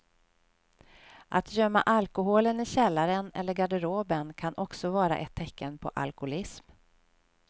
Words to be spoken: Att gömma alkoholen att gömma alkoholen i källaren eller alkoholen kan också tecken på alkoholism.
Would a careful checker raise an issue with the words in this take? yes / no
yes